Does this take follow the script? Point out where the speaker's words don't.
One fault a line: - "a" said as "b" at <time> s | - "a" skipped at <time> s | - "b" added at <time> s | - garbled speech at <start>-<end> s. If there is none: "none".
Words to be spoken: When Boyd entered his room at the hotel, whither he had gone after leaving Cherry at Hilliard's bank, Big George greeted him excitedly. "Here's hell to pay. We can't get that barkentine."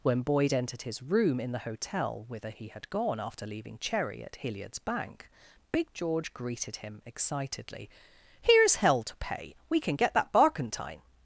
- "at" said as "in" at 1.4 s
- "can't" said as "can" at 9.8 s